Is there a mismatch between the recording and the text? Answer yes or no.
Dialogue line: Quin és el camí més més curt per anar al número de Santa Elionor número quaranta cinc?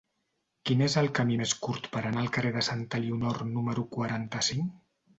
yes